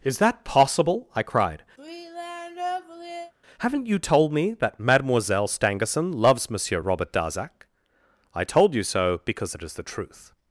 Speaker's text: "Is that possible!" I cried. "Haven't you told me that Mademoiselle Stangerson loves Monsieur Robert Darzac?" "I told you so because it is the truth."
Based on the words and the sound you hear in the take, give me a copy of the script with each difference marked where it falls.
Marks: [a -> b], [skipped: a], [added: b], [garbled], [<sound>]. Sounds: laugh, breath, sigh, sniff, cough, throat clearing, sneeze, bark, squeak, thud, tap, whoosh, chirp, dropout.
"Is that possible!" I cried. [sigh] "Haven't you told me that Mademoiselle Stangerson loves Monsieur Robert Darzac?" "I told you so because it is the truth."